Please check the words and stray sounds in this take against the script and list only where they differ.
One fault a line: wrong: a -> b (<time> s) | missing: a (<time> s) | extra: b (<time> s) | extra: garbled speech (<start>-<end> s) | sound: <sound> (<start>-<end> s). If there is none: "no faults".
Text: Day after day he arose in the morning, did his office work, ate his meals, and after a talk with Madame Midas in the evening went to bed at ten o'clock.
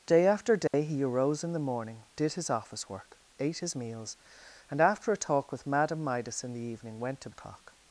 sound: dropout (0.7-0.7 s)
missing: bed at ten (7.3 s)